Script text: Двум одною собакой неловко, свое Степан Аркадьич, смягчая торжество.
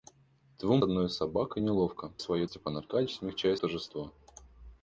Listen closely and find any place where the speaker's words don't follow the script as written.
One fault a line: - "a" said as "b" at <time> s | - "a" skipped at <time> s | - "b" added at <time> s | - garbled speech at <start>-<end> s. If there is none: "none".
none